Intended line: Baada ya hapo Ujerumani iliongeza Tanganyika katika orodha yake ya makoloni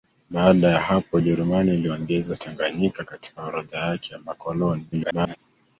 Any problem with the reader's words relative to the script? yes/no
yes